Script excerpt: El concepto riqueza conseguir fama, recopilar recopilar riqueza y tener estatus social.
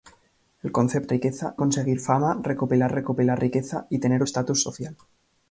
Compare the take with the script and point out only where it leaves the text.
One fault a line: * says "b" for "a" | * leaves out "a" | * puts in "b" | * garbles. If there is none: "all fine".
all fine